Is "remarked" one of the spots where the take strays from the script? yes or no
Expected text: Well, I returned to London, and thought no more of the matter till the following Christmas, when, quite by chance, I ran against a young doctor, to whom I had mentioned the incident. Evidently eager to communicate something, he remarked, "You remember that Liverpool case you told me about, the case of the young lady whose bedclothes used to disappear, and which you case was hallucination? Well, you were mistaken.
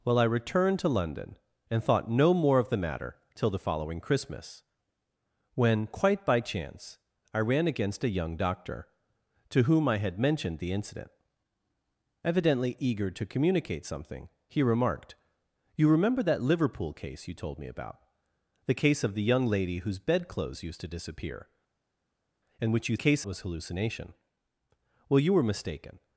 no